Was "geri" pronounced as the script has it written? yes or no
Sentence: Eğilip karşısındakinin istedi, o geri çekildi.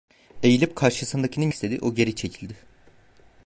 yes